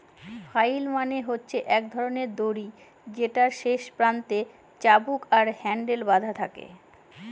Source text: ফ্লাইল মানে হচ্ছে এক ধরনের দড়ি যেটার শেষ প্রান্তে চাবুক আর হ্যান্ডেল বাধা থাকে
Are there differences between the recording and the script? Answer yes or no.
no